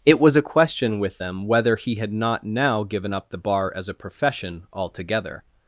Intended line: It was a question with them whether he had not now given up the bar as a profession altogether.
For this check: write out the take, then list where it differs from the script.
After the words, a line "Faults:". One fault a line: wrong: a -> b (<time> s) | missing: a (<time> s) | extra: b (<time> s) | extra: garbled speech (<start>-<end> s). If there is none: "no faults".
It was a question with them whether he had not now given up the bar as a profession altogether.
Faults:
no faults